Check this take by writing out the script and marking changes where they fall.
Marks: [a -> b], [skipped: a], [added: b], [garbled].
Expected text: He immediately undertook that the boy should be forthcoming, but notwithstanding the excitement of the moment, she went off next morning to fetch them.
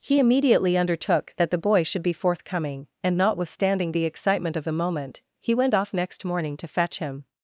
He immediately undertook that the boy should be forthcoming, [but -> and] notwithstanding the excitement of the moment, [she -> he] went off next morning to fetch [them. -> him]